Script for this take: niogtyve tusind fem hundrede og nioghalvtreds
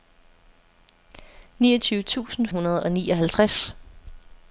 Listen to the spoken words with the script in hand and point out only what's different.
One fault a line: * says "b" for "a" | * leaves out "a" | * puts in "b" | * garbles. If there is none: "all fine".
* leaves out "fem"